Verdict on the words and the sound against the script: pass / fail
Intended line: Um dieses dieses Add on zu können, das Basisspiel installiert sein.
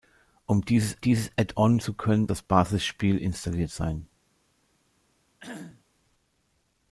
fail